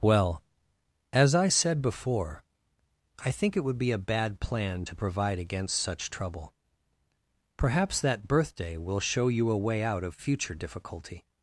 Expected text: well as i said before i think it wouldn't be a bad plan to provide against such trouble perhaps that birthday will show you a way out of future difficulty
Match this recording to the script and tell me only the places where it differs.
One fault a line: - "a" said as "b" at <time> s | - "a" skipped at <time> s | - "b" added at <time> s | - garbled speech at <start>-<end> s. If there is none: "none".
- "wouldn't" said as "would" at 3.6 s